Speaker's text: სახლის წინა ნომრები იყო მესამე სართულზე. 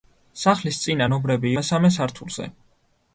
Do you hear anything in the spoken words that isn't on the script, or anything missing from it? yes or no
yes